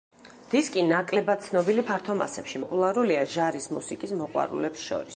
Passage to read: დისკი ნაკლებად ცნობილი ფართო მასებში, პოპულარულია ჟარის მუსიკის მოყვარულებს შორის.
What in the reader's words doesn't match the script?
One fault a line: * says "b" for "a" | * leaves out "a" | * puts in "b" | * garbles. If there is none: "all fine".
all fine